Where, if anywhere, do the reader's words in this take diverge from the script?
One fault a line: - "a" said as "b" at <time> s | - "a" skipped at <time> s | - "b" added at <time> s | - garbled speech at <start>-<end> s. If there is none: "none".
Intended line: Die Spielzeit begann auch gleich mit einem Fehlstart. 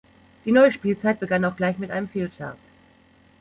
- "neue" added at 0.5 s